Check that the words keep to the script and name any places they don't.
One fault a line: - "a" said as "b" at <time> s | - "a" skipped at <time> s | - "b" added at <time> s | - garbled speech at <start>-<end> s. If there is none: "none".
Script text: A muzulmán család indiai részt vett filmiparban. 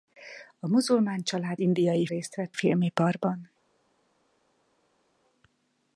none